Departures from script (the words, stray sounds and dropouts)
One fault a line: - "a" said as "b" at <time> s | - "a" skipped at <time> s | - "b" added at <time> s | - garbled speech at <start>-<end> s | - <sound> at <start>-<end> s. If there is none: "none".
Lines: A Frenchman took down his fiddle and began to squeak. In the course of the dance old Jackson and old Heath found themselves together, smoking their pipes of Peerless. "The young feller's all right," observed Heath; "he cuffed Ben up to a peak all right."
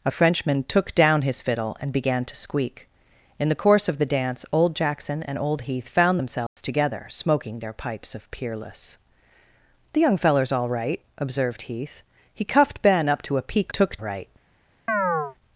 - dropout at 6.5-6.6 s
- "all" said as "took" at 13.7 s
- chirp at 14.9-15.4 s